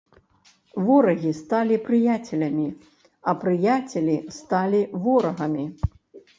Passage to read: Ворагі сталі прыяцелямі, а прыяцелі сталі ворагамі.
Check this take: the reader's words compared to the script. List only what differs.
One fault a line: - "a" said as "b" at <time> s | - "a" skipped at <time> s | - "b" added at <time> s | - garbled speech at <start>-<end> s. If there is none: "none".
none